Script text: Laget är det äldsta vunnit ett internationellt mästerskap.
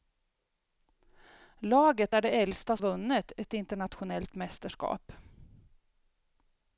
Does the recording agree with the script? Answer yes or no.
yes